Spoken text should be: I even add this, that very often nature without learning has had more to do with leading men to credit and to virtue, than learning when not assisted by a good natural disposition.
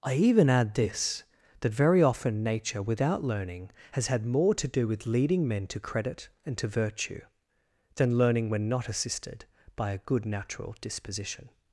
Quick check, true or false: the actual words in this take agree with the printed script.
true